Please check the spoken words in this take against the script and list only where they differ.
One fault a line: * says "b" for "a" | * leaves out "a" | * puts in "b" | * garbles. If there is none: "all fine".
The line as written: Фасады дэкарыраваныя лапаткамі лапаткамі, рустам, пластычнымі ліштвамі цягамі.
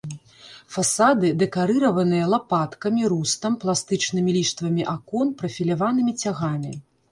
* leaves out "лапаткамі"
* puts in "акон прафіляванымі"